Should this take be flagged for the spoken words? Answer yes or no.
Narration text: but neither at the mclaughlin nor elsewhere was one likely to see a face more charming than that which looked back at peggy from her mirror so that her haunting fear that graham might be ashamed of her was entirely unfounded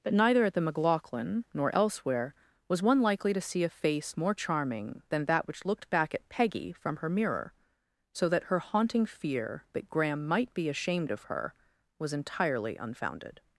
no